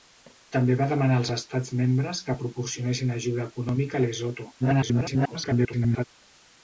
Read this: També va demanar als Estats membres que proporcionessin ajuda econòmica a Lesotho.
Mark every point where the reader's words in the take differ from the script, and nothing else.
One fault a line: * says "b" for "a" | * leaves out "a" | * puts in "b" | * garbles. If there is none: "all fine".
* garbles